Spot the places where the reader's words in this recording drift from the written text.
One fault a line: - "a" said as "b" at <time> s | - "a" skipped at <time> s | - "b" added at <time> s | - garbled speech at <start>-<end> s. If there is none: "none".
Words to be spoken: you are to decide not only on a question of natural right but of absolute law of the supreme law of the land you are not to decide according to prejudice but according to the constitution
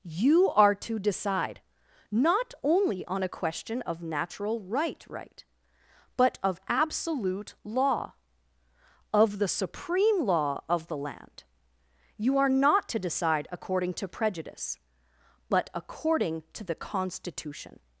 - "right" added at 5.1 s